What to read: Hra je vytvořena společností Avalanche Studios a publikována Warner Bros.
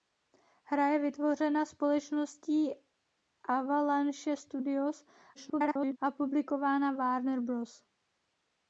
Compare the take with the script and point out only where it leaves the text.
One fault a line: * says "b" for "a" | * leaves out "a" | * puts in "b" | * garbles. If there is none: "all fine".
* garbles